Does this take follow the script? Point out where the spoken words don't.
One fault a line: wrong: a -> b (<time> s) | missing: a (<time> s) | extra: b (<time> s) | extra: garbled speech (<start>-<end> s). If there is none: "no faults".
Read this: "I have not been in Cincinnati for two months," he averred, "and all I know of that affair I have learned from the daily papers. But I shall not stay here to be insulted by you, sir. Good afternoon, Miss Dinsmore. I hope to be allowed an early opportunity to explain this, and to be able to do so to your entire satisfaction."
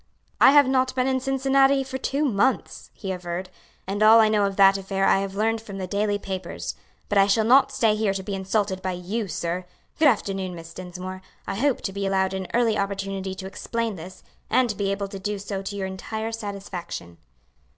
no faults